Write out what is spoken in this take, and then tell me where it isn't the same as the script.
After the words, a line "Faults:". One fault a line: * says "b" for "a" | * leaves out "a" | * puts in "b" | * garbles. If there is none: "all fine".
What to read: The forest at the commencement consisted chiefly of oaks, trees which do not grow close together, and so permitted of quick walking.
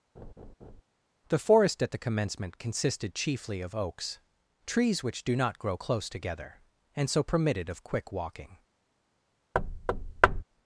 The forest at the commencement consisted chiefly of oaks, trees which do not grow close together, and so permitted of quick walking.
Faults:
all fine